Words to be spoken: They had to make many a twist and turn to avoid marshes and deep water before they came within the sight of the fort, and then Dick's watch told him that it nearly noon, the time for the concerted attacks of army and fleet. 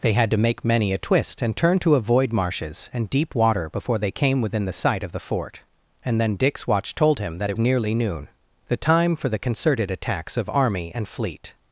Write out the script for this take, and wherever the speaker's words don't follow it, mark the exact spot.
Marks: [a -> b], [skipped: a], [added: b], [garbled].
They had to make many a twist and turn to avoid marshes and deep water before they came within the sight of the fort, and then Dick's watch told him that it nearly noon, the time for the concerted attacks of army and fleet.